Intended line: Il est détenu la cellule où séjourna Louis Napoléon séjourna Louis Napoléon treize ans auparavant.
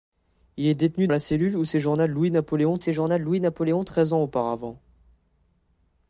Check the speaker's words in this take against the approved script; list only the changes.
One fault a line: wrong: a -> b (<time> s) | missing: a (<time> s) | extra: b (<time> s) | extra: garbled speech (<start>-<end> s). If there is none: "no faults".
no faults